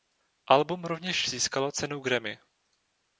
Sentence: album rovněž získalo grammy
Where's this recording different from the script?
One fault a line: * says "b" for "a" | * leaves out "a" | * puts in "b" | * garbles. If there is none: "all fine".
* puts in "cenu"